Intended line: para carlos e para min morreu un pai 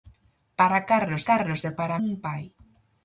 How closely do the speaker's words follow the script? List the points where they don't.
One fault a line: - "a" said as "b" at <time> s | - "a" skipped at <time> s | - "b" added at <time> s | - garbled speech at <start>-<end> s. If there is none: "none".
- "carlos" added at 1.3 s
- "min morreu" skipped at 2.0 s